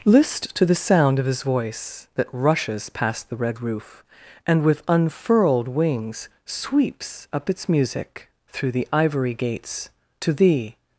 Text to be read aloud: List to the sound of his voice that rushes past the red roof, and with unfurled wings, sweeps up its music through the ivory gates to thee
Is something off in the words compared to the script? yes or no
no